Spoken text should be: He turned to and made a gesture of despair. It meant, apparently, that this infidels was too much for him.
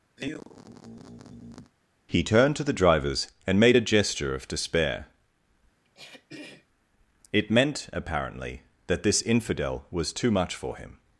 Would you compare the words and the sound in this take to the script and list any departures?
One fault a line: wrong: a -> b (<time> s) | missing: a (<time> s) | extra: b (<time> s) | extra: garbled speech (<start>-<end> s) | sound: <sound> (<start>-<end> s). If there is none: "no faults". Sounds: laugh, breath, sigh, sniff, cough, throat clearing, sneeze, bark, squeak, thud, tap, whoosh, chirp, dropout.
sound: sigh (0.2-1.7 s)
extra: the drivers (2.6 s)
sound: throat clearing (5.8-6.7 s)
wrong: infidels -> infidel (9.2 s)